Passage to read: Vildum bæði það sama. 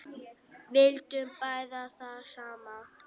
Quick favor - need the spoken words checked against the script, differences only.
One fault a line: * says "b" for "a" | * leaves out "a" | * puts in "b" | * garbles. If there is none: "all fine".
all fine